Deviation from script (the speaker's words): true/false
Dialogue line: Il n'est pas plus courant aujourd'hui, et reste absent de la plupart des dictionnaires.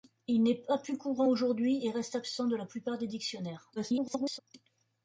true